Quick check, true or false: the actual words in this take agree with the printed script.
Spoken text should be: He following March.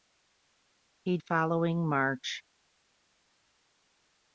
true